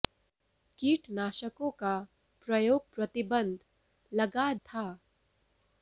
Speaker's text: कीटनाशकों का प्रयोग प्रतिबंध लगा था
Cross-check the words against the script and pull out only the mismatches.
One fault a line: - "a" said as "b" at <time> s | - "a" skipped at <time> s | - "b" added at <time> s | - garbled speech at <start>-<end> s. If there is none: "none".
none